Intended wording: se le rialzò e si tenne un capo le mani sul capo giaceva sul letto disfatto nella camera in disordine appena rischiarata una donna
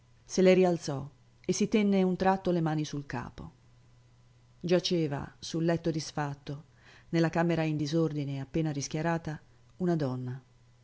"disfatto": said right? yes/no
yes